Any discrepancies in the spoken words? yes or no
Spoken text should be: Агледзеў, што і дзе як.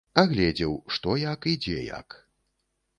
yes